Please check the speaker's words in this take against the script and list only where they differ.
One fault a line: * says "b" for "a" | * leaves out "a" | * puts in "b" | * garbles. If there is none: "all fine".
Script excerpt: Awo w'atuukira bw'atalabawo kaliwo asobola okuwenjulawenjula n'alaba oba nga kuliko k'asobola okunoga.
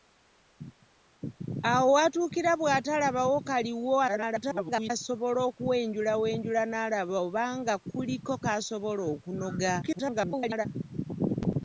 * garbles
* garbles